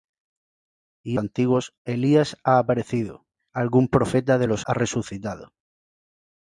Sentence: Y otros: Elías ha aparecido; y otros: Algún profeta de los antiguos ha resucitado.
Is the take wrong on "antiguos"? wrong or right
wrong